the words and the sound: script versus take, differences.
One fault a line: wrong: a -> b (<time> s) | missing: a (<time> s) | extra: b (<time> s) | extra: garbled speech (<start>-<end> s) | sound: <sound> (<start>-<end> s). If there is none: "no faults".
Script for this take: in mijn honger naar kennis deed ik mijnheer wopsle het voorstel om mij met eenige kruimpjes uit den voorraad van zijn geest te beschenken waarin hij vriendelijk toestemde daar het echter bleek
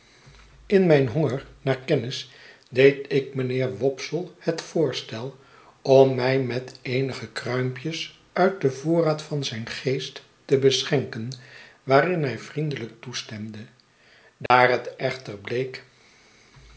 sound: dropout (14.5-14.5 s)